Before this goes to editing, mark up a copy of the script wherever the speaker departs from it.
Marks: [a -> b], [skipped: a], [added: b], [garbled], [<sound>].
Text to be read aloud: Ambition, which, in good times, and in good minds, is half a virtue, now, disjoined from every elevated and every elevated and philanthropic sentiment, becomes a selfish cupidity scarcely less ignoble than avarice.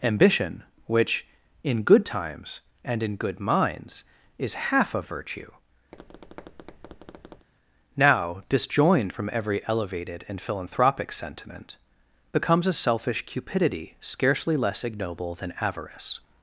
Ambition, which, in good times, and in good minds, is half a virtue, [tap] now, disjoined from every elevated and [skipped: every elevated and] philanthropic sentiment, becomes a selfish cupidity scarcely less ignoble than avarice.